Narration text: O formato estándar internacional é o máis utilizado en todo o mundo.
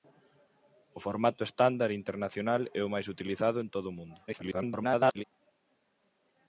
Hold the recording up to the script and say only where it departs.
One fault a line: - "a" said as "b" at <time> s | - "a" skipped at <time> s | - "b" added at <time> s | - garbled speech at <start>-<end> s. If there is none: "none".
- garbled speech at 4.3-5.2 s